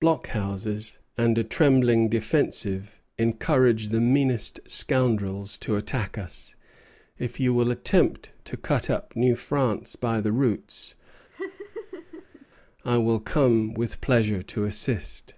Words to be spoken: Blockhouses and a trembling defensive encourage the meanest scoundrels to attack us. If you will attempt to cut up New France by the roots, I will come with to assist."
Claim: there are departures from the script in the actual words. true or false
true